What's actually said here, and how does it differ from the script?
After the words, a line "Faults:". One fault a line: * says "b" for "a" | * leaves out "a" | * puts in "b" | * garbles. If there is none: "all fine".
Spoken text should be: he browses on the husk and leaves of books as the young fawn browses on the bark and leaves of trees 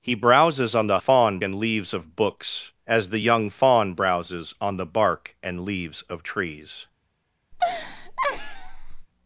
he browses on the fawn and leaves of books as the young fawn browses on the bark and leaves of trees
Faults:
* says "fawn" for "husk"